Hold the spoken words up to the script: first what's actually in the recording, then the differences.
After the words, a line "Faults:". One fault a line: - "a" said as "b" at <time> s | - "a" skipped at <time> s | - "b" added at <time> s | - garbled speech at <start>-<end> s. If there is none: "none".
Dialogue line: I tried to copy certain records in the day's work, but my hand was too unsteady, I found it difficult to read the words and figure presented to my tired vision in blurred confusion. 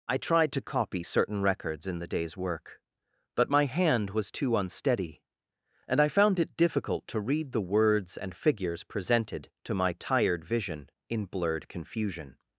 I tried to copy certain records in the day's work, but my hand was too unsteady, and I found it difficult to read the words and figures presented to my tired vision in blurred confusion.
Faults:
- "and" added at 5.9 s
- "figure" said as "figures" at 8.3 s